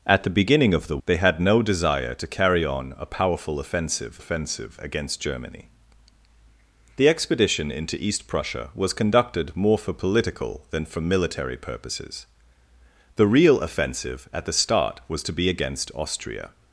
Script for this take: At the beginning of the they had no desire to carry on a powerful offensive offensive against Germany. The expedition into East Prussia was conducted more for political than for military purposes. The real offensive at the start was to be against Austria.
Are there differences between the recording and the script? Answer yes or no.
no